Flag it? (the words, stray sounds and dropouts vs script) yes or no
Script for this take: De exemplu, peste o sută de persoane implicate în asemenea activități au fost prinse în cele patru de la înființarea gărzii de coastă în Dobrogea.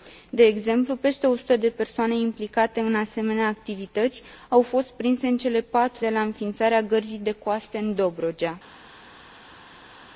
no